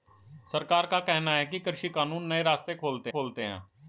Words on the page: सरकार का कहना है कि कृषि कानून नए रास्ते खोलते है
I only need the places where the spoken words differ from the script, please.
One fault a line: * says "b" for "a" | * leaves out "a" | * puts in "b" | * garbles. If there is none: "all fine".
* puts in "खोलते"